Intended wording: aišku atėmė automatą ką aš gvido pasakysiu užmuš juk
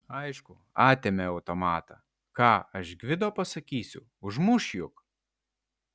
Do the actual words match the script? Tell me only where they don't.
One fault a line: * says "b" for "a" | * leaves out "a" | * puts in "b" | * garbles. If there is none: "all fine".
all fine